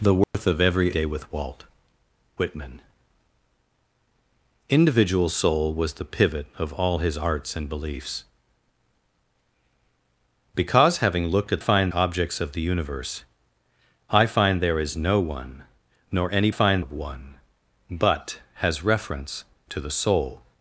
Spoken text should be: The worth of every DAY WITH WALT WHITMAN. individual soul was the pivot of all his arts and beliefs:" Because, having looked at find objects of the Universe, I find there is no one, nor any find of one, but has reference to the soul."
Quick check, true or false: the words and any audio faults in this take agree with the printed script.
false